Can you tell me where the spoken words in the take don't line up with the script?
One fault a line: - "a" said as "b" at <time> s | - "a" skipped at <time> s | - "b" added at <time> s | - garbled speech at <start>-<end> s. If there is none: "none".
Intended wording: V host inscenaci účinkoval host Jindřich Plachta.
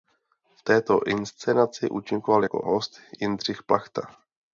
- "host" said as "této" at 0.6 s
- "jako" added at 2.4 s